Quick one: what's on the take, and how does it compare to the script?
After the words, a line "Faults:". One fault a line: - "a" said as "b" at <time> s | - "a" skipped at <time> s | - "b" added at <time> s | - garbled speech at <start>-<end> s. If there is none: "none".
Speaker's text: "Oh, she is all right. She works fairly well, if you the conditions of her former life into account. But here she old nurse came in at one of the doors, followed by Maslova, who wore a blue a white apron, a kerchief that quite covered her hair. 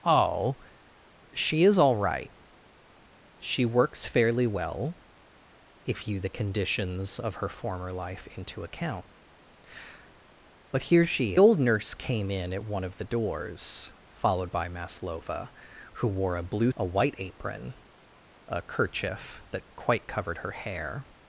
"Oh, she is all right. She works fairly well, if you the conditions of her former life into account. But here she old nurse came in at one of the doors, followed by Maslova, who wore a blue a white apron, a kerchief that quite covered her hair.
Faults:
none